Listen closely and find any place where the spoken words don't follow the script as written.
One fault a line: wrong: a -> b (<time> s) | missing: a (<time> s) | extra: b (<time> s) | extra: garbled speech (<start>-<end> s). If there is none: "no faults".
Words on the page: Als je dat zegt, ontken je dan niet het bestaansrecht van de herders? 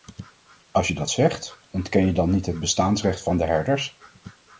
no faults